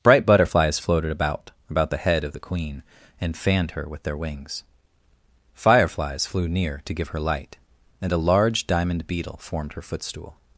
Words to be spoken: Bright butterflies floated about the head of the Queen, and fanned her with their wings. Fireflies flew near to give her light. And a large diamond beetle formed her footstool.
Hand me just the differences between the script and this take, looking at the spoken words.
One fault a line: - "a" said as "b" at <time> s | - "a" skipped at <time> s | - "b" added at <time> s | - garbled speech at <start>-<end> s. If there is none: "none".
- "about" added at 1.7 s